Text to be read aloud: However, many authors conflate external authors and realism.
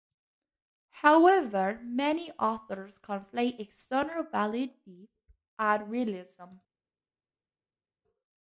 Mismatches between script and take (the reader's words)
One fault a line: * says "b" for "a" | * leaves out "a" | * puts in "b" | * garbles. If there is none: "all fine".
* says "validity" for "authors"